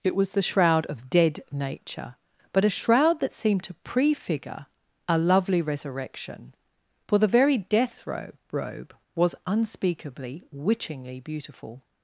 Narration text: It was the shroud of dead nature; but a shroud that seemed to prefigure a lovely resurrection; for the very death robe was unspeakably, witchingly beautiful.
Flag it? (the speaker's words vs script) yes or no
yes